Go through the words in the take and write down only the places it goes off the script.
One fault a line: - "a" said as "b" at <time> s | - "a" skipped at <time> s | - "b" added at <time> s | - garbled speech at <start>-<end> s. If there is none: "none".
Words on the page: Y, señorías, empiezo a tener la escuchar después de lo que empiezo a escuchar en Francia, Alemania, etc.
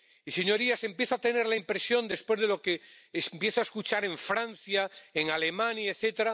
- "escuchar" said as "impresión" at 1.5 s
- "en" added at 5.1 s